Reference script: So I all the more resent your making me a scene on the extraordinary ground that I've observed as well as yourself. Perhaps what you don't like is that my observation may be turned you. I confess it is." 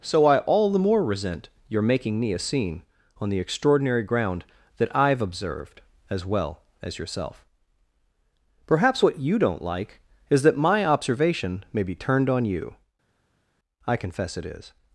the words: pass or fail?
fail